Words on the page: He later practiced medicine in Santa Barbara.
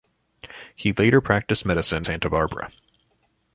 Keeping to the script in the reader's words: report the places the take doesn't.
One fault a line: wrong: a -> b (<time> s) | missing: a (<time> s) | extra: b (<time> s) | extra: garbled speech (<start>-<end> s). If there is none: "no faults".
missing: in (2.1 s)